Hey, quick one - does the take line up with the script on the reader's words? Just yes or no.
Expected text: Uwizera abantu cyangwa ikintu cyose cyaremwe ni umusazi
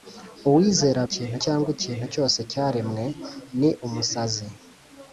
no